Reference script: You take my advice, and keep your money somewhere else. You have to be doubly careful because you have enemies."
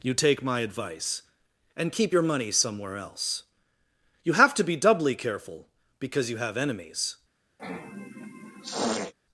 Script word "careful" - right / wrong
right